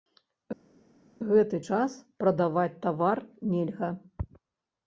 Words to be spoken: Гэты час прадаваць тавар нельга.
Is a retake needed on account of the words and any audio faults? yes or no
no